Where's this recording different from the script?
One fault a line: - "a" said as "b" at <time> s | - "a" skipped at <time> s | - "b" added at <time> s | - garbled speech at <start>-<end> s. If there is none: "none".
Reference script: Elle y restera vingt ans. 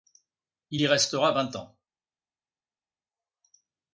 - "Elle" said as "Il" at 0.7 s